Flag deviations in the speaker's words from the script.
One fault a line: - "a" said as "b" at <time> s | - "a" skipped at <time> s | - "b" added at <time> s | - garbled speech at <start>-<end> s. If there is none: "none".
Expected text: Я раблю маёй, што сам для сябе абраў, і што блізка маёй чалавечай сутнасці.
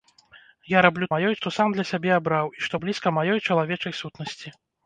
none